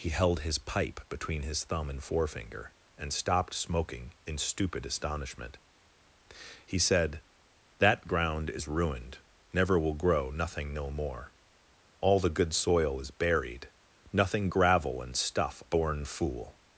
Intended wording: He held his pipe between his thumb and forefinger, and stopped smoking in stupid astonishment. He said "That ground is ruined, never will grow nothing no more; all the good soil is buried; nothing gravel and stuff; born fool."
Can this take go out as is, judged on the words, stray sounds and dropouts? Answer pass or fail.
pass